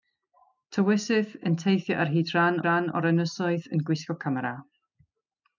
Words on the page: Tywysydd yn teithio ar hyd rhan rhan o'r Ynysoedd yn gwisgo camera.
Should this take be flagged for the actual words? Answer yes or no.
no